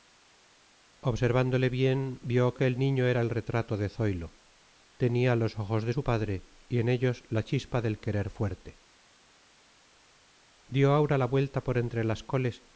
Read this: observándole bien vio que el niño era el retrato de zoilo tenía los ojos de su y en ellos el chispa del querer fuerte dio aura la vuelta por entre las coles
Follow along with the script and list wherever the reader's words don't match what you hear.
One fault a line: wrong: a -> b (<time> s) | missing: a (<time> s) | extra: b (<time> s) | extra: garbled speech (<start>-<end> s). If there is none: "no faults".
extra: padre (6.0 s)
wrong: el -> la (7.3 s)